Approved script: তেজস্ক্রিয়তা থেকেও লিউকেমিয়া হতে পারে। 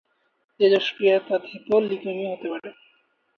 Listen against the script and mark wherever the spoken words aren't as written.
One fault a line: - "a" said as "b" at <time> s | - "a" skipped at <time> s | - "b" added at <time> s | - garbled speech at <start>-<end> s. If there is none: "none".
none